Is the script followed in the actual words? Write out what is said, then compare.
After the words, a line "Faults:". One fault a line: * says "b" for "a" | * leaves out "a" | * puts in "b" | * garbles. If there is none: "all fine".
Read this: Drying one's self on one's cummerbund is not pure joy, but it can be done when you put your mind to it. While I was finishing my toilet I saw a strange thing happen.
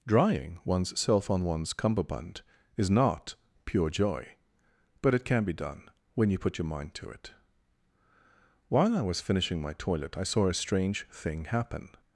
Drying one's self on one's cummerbund is not pure joy, but it can be done when you put your mind to it. While I was finishing my toilet I saw a strange thing happen.
Faults:
all fine